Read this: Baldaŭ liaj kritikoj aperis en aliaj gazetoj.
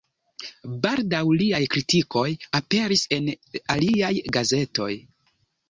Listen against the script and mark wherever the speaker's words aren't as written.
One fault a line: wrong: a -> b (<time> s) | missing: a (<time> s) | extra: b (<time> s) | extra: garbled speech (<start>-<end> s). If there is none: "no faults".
no faults